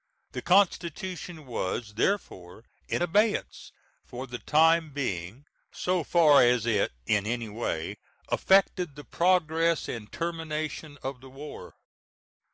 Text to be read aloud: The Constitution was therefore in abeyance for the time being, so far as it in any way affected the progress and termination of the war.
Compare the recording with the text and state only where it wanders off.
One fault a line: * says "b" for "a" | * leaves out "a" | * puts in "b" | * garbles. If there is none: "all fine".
all fine